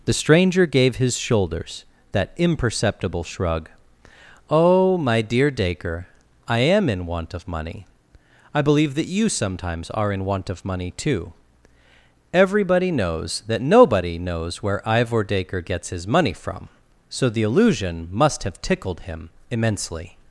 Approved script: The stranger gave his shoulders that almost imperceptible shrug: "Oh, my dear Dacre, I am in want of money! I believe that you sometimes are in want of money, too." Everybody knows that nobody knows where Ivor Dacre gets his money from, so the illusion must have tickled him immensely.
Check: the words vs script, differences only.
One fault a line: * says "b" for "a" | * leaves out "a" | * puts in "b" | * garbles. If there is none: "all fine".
* leaves out "almost"